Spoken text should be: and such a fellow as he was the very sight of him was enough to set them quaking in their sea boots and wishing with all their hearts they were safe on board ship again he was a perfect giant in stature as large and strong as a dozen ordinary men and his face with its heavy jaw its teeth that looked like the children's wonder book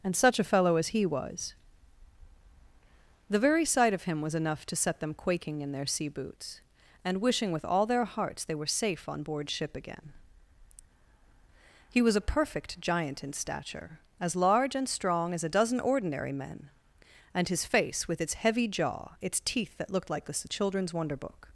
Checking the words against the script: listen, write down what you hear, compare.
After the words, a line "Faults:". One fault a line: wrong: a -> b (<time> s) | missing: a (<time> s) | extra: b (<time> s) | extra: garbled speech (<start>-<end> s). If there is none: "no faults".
and such a fellow as he was the very sight of him was enough to set them quaking in their sea boots and wishing with all their hearts they were safe on board ship again he was a perfect giant in stature as large and strong as a dozen ordinary men and his face with its heavy jaw its teeth that looked like the children's wonder book
Faults:
no faults